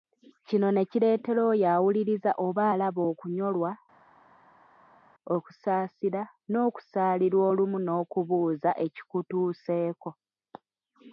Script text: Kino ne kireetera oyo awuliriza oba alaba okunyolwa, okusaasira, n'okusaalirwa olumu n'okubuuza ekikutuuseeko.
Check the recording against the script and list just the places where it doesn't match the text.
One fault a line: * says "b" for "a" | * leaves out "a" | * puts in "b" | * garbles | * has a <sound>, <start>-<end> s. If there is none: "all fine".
all fine